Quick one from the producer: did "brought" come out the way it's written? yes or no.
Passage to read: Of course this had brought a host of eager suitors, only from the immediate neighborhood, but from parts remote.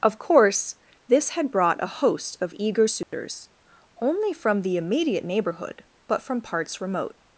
yes